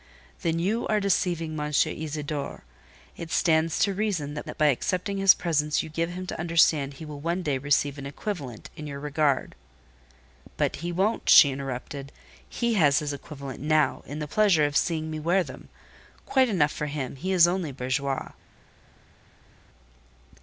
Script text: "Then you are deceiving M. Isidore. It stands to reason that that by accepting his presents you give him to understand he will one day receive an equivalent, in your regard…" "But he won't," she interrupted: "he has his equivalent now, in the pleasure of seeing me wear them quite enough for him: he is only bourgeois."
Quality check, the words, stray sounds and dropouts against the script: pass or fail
pass